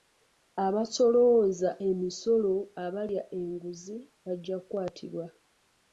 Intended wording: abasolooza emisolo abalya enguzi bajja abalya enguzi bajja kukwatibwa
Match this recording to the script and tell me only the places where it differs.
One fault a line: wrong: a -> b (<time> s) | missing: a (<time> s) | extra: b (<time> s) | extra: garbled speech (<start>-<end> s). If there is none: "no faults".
missing: abalya enguzi bajja (4.6 s)